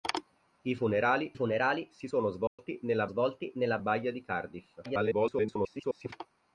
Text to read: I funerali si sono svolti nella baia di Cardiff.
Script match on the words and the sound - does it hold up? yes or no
no